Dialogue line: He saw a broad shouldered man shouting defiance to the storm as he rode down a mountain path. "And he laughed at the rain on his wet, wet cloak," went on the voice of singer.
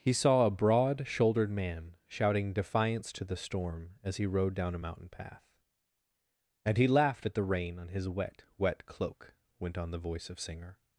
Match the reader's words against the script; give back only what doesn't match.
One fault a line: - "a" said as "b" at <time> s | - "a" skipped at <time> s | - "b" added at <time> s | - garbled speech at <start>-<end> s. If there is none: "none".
none